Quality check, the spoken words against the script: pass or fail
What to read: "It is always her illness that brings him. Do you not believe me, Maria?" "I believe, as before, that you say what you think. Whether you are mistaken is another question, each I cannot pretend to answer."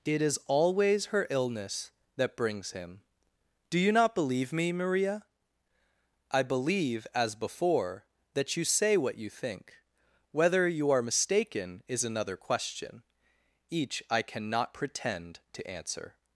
pass